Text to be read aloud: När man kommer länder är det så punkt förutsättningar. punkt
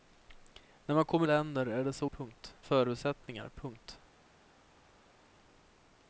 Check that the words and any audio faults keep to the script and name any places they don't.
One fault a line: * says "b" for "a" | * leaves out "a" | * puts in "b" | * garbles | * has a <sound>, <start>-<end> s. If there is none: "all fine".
all fine